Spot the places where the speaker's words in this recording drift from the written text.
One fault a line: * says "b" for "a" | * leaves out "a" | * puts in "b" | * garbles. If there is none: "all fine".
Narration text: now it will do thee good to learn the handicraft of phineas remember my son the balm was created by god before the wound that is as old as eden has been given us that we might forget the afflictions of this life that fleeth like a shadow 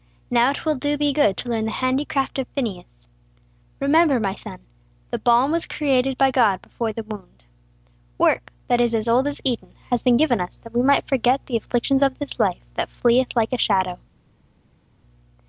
* puts in "work"